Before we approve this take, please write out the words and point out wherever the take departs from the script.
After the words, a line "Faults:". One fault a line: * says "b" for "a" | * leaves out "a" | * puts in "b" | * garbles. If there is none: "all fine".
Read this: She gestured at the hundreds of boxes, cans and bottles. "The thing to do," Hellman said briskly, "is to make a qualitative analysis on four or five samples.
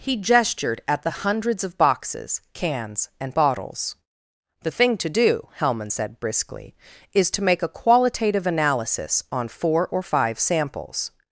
He gestured at the hundreds of boxes, cans and bottles. "The thing to do," Hellman said briskly, "is to make a qualitative analysis on four or five samples.
Faults:
* says "He" for "She"